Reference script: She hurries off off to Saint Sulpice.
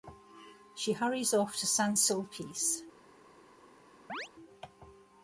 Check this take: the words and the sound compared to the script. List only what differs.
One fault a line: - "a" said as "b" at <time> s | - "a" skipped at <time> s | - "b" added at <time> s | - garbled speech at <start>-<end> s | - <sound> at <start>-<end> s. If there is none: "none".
- "off" skipped at 1.6 s
- chirp at 4.1-4.3 s